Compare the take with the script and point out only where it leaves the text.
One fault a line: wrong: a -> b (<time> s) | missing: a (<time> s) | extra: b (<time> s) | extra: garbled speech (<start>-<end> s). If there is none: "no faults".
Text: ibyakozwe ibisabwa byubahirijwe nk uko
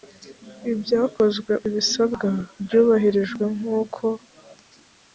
no faults